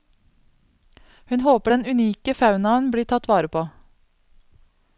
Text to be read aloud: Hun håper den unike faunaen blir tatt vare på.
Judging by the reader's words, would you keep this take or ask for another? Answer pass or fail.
pass